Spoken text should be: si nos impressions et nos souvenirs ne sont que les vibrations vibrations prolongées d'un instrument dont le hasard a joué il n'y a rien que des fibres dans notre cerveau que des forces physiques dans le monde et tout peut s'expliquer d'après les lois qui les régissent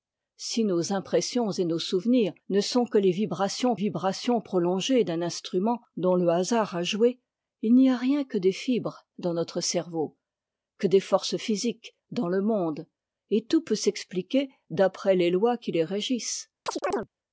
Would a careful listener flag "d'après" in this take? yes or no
no